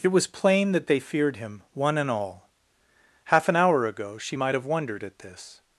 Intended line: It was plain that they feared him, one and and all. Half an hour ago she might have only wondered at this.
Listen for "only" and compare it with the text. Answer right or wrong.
wrong